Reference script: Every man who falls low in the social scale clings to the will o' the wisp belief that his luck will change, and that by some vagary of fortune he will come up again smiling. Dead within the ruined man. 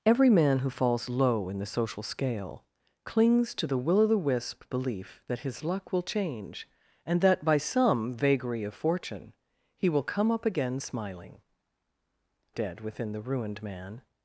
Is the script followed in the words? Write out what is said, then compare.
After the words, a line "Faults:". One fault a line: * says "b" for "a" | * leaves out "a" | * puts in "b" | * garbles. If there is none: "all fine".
Every man who falls low in the social scale clings to the will o' the wisp belief that his luck will change, and that by some vagary of fortune he will come up again smiling. Dead within the ruined man.
Faults:
all fine